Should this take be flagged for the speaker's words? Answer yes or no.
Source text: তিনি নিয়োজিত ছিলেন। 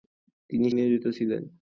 no